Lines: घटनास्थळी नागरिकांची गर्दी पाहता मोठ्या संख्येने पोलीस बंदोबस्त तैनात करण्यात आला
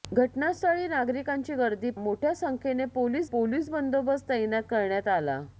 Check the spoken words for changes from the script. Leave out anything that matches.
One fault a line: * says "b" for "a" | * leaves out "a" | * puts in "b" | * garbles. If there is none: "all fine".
* leaves out "पाहता"
* puts in "पोलीस"